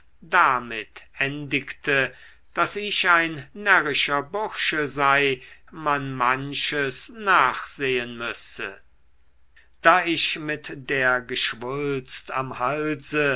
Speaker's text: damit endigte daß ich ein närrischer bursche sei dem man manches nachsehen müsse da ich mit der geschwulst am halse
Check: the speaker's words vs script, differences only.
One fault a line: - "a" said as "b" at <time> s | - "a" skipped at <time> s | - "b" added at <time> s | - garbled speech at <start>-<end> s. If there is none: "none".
- "dem" skipped at 5.4 s